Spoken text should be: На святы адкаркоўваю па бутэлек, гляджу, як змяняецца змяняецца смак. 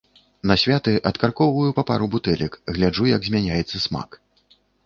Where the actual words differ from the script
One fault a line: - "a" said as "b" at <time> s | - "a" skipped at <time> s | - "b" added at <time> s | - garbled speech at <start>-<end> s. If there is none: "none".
- "пару" added at 1.9 s
- "змяняецца" skipped at 3.8 s